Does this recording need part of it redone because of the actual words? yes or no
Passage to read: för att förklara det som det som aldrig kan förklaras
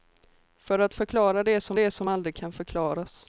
no